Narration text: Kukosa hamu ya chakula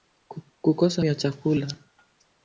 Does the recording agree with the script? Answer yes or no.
no